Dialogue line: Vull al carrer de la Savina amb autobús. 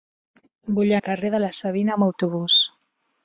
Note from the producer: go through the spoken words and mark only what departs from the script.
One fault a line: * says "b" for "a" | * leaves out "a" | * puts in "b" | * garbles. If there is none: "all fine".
all fine